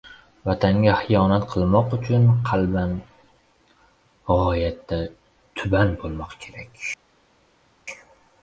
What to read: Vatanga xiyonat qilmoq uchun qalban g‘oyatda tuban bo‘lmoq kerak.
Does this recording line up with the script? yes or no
yes